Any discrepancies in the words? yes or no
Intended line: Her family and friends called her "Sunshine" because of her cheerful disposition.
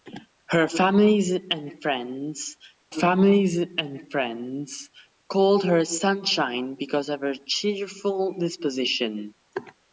yes